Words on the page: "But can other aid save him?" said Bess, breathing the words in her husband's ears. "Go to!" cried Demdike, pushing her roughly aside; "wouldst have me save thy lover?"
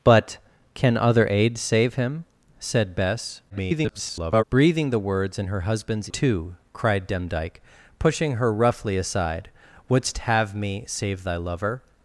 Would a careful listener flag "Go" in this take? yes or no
yes